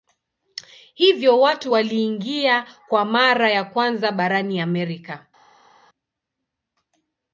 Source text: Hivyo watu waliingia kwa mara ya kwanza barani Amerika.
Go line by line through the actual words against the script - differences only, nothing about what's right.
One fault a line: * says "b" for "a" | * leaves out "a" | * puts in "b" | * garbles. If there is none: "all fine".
all fine